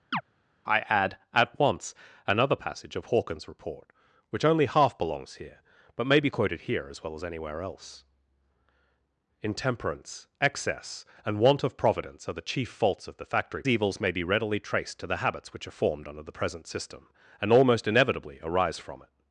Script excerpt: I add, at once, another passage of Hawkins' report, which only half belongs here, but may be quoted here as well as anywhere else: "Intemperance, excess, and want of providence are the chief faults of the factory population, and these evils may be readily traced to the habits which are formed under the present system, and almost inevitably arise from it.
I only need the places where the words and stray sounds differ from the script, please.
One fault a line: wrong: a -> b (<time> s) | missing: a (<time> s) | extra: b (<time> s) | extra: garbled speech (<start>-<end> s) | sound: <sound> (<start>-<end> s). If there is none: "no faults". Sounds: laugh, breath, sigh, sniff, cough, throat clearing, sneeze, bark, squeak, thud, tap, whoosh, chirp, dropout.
sound: chirp (0.1-0.2 s)
missing: population and these (13.6 s)